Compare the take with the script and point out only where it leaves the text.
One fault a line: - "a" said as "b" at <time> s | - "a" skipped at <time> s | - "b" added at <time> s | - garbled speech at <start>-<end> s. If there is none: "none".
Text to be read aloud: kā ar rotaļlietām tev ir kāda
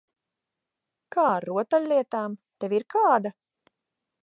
none